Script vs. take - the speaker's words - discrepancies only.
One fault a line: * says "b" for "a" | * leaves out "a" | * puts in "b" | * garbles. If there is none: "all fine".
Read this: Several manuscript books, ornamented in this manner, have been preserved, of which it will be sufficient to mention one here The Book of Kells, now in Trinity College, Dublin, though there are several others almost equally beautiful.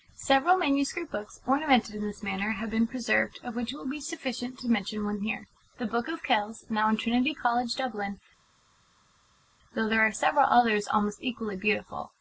all fine